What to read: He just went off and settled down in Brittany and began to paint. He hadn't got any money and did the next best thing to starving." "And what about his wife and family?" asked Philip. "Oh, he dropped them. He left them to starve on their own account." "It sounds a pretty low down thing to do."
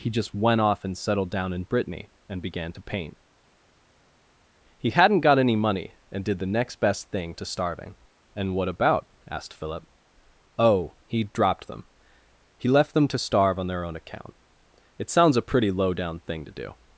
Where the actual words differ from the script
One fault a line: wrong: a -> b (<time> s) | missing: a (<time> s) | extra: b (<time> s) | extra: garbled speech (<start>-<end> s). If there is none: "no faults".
missing: his wife and family (9.1 s)